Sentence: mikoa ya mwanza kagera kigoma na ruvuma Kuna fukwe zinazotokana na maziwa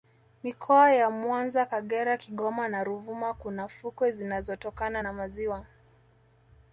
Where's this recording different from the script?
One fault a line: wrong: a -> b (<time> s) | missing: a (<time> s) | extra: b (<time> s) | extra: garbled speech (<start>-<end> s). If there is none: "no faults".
no faults